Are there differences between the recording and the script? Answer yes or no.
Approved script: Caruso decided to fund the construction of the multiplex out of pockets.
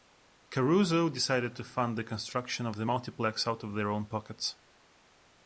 yes